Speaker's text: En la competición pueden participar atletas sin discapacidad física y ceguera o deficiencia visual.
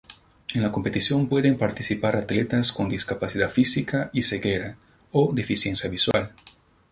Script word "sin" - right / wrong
wrong